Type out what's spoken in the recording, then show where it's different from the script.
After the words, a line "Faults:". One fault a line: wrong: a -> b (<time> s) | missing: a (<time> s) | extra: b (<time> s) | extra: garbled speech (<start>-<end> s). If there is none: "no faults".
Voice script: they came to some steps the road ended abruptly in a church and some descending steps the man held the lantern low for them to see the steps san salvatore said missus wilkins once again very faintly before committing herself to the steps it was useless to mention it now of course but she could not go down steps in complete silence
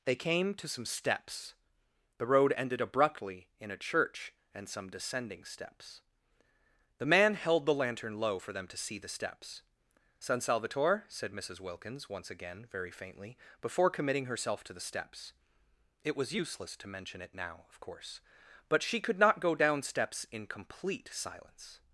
they came to some steps the road ended abruptly in a church and some descending steps the man held the lantern low for them to see the steps san salvatore said missus wilkins once again very faintly before committing herself to the steps it was useless to mention it now of course but she could not go down steps in complete silence
Faults:
no faults